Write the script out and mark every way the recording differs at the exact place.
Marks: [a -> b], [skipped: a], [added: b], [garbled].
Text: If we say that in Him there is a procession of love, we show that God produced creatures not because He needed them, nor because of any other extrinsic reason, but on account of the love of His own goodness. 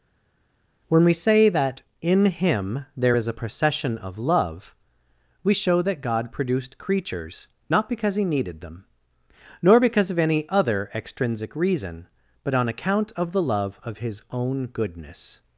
[If -> When] we say that in Him there is a procession of love, we show that God produced creatures not because He needed them, nor because of any other extrinsic reason, but on account of the love of His own goodness.